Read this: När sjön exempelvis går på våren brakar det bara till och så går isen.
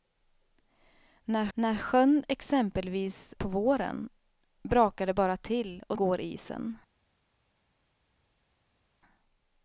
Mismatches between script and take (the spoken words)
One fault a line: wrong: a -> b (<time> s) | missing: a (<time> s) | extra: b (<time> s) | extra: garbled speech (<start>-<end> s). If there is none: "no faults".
extra: när (1.5 s)
missing: går (3.3 s)
missing: så (6.0 s)